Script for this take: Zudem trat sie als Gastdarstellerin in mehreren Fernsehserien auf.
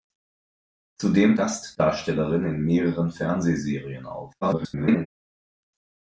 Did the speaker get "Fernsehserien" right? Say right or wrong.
right